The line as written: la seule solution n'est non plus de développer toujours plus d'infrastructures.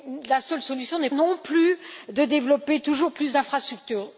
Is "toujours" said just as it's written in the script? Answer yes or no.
yes